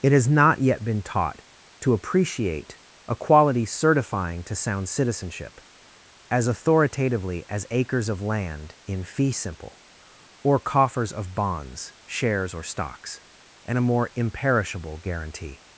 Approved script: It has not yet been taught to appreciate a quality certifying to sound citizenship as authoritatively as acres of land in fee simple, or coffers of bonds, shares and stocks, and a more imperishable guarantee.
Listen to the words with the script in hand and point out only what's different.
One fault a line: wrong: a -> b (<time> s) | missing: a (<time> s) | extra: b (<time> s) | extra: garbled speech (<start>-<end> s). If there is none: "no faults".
wrong: and -> or (12.5 s)